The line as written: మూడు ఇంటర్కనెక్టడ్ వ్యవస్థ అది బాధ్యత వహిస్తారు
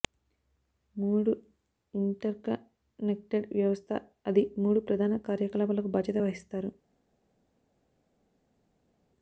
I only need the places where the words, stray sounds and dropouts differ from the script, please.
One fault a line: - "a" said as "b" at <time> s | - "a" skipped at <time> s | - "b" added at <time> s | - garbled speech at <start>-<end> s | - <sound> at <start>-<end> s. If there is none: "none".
- "మూడు ప్రధాన కార్యకలాపాలకు" added at 4.6 s